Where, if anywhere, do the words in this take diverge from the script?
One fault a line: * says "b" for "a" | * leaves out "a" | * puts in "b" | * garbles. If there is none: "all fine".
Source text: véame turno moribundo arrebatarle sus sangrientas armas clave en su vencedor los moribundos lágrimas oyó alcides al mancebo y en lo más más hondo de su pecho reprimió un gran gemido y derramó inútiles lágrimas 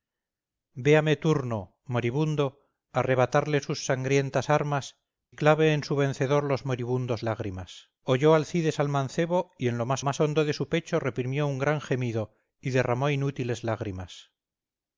all fine